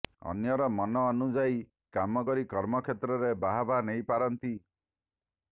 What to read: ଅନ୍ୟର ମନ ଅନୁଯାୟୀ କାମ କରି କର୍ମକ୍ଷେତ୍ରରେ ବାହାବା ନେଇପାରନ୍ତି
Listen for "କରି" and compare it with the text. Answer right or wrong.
right